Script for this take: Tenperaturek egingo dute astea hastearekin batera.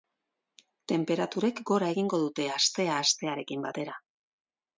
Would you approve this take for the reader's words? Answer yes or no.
no